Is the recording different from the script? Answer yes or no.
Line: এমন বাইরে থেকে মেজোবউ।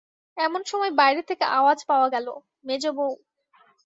yes